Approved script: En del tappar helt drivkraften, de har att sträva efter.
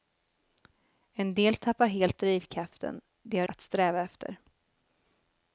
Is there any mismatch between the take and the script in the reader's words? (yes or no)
no